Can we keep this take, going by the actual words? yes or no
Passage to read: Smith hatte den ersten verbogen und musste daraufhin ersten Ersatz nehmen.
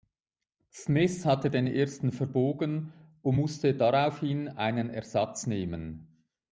no